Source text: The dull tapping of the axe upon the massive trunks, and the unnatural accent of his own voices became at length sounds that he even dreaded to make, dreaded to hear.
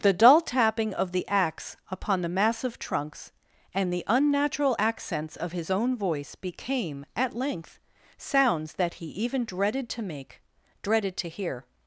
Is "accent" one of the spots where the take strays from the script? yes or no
yes